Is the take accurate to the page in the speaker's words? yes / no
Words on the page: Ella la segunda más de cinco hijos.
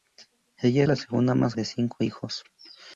yes